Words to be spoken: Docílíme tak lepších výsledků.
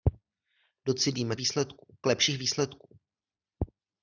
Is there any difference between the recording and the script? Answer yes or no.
yes